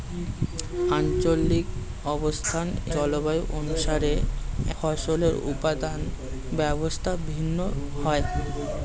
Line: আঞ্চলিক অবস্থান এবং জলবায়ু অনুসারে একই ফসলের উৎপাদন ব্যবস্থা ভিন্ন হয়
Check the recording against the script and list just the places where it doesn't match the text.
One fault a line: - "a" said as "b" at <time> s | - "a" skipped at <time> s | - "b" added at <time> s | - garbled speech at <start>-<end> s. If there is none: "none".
- "এবং" skipped at 2.7 s
- "একই" skipped at 4.1 s